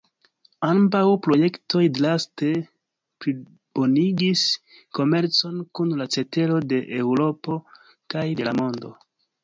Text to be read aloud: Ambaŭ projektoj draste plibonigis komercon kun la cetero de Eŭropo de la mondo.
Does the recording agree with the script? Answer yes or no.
no